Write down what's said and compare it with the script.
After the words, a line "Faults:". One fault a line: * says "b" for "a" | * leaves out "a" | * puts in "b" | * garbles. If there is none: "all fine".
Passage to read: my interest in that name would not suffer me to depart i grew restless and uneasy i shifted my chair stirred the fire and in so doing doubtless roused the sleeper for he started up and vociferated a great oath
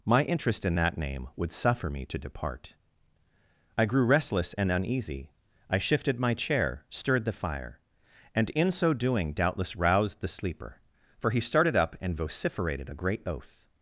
my interest in that name would suffer me to depart i grew restless and uneasy i shifted my chair stirred the fire and in so doing doubtless roused the sleeper for he started up and vociferated a great oath
Faults:
* leaves out "not"